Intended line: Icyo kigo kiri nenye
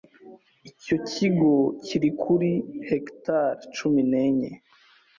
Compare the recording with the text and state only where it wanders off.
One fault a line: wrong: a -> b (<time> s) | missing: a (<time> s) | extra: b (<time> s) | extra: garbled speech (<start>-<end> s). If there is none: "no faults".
extra: kuri hegitari cumi (2.2 s)